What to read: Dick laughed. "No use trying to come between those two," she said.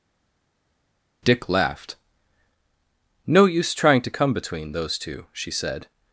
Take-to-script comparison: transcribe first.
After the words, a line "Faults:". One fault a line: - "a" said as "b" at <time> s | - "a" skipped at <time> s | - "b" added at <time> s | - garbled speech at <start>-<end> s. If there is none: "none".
Dick laughed. "No use trying to come between those two," she said.
Faults:
none